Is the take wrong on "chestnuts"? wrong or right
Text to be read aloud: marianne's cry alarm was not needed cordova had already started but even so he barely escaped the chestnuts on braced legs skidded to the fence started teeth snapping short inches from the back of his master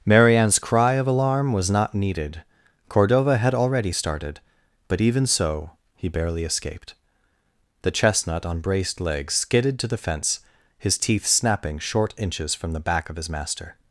wrong